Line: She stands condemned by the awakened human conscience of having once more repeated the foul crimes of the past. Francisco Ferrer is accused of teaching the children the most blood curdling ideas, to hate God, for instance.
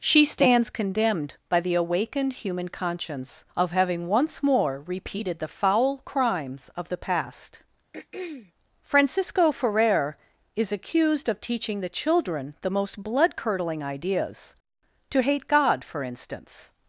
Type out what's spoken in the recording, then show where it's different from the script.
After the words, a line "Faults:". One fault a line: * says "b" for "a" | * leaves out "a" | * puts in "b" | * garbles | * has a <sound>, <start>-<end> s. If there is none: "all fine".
She stands condemned by the awakened human conscience of having once more repeated the foul crimes of the past. Francisco Ferrer is accused of teaching the children the most blood curdling ideas, to hate God, for instance.
Faults:
* has a throat clearing, 7.9-8.5 s